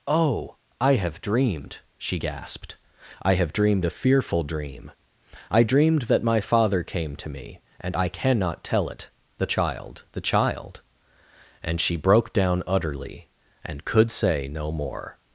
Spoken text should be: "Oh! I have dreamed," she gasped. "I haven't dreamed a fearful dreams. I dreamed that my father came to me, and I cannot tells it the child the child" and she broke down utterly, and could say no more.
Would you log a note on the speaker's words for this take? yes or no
yes